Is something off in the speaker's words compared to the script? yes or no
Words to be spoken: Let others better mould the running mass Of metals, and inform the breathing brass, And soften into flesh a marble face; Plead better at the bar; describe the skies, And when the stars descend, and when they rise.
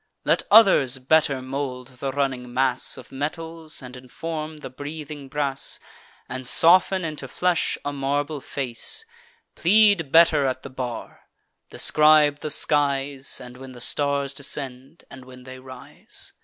no